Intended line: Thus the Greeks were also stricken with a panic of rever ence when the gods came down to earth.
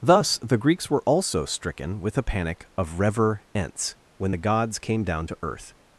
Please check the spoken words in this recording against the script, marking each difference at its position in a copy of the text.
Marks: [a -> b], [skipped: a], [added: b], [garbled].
Thus the Greeks were also stricken with a panic of rever ence when the gods came down to earth.